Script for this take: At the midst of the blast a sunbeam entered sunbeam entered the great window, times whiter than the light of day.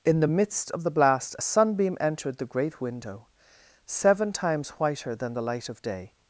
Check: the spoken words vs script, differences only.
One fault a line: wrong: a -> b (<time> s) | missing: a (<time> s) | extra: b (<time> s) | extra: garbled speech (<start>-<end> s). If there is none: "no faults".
wrong: At -> In (0.0 s)
missing: sunbeam entered (2.4 s)
extra: seven (3.9 s)